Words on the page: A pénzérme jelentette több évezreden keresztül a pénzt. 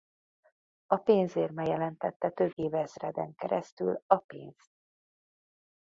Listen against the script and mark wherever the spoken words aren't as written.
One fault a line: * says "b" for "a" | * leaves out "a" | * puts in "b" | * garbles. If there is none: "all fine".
all fine